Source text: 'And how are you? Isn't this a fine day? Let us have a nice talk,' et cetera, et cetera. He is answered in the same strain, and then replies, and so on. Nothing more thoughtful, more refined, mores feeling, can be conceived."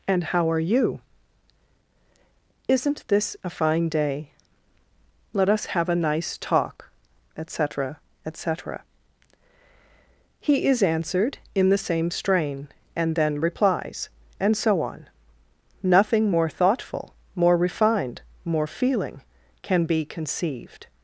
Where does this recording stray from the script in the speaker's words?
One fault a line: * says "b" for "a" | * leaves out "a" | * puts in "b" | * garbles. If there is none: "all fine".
* says "more" for "mores"